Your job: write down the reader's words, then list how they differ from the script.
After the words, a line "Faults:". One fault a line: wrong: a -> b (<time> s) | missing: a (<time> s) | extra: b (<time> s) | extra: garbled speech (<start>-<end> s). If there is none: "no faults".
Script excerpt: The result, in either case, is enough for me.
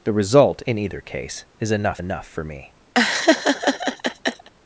The result, in either case, is enough enough for me.
Faults:
extra: enough (2.0 s)